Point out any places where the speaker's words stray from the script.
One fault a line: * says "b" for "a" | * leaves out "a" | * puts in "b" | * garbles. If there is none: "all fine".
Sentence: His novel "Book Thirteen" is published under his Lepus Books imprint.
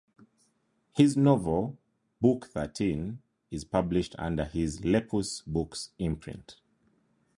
all fine